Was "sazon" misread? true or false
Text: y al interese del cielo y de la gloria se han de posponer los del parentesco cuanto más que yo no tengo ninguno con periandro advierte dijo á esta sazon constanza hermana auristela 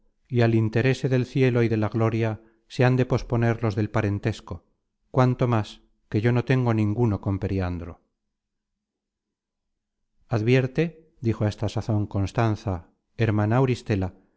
false